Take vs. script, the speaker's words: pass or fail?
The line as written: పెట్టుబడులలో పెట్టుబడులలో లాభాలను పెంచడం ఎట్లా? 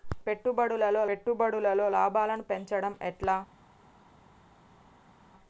pass